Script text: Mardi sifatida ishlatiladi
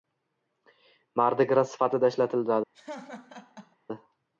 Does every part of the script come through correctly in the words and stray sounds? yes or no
no